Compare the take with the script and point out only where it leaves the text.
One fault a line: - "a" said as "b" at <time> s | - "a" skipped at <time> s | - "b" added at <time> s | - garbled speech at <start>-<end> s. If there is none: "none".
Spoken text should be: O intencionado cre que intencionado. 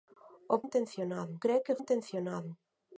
none